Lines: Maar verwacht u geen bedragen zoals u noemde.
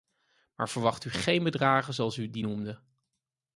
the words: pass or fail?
fail